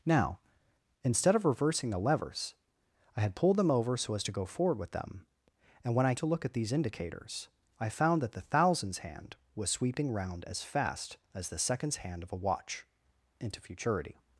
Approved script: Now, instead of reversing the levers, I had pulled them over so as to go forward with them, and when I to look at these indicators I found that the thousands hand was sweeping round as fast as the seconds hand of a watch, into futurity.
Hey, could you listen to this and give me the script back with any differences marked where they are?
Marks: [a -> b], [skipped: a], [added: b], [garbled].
Now, instead of reversing the levers, I had pulled them over so as to go forward with them, and when I to look at these indicators I found that the thousands hand was sweeping round as fast as the seconds hand of a watch, into futurity.